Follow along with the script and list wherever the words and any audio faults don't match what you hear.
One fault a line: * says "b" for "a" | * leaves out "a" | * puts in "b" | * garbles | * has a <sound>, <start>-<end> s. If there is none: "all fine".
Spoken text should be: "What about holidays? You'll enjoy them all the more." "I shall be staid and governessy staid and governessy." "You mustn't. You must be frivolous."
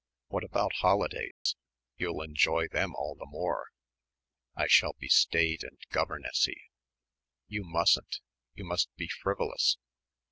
* has a dropout, 1.3-1.5 s
* leaves out "staid and governessy"